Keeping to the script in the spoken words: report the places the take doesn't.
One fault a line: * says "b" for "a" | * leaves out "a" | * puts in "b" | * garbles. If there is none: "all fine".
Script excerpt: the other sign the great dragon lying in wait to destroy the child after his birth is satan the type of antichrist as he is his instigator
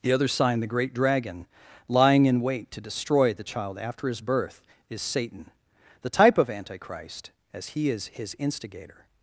all fine